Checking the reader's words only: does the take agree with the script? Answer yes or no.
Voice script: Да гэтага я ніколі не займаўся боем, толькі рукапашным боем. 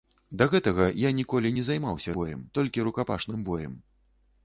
yes